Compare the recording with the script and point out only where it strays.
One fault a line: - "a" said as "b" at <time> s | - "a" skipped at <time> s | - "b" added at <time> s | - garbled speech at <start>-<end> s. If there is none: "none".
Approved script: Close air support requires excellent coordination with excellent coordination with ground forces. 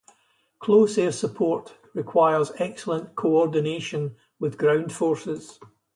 - "excellent coordination with" skipped at 4.6 s